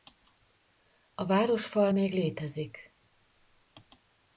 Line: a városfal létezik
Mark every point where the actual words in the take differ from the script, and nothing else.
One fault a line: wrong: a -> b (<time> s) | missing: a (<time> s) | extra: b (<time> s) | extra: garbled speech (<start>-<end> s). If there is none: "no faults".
extra: még (1.9 s)